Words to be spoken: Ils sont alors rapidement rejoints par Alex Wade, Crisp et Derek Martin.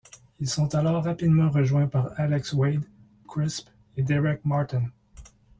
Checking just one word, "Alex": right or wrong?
right